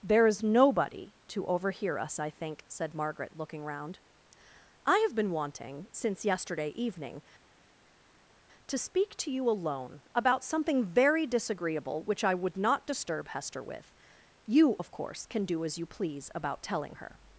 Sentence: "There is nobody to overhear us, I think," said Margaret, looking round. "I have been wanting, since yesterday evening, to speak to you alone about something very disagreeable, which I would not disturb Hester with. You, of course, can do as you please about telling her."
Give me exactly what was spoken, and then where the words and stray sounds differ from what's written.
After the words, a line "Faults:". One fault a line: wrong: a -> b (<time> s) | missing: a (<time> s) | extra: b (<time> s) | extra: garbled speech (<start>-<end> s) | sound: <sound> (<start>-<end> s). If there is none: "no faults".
"There is nobody to overhear us, I think," said Margaret, looking round. "I have been wanting, since yesterday evening, to speak to you alone about something very disagreeable, which I would not disturb Hester with. You, of course, can do as you please about telling her."
Faults:
no faults